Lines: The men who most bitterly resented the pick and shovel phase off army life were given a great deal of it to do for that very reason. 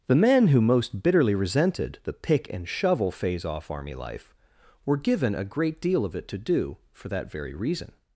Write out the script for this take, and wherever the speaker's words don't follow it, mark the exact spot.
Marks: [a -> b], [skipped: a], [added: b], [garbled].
The men who most bitterly resented the pick and shovel phase off army life were given a great deal of it to do for that very reason.